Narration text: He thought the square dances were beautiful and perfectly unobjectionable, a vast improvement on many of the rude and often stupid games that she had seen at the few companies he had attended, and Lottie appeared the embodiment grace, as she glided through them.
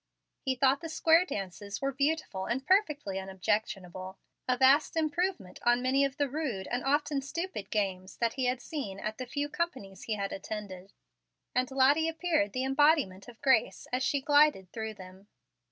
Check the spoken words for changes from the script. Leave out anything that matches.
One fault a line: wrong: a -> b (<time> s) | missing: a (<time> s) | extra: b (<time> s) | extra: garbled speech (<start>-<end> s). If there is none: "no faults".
wrong: she -> he (8.3 s)
extra: of (13.3 s)